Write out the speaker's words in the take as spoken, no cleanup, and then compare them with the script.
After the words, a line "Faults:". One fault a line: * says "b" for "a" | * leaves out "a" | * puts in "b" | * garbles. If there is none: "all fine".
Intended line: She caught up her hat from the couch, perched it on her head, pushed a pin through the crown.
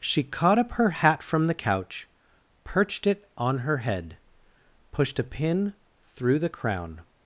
She caught up her hat from the couch, perched it on her head, pushed a pin through the crown.
Faults:
all fine